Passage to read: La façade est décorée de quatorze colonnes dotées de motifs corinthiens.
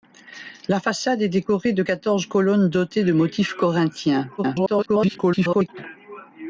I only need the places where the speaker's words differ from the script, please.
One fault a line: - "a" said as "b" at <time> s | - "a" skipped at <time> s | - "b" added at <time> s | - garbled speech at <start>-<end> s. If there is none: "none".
- garbled speech at 4.4-5.7 s